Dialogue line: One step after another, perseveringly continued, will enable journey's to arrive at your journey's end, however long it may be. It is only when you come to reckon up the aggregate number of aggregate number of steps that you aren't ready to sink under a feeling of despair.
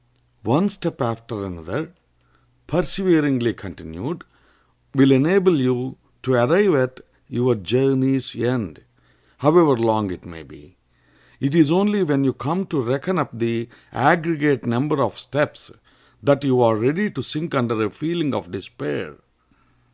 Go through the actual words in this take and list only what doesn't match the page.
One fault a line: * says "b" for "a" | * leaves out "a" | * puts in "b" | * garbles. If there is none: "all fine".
* says "you" for "journey's"
* leaves out "aggregate number of"
* says "are" for "aren't"